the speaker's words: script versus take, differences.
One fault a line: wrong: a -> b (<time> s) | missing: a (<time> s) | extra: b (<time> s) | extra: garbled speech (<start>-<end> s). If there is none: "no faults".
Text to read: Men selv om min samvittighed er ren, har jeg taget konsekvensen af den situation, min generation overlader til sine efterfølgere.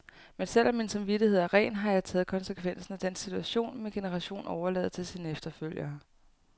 no faults